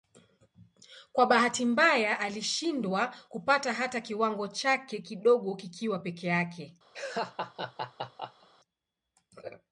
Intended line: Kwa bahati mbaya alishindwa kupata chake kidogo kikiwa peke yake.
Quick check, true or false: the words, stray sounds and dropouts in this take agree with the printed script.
false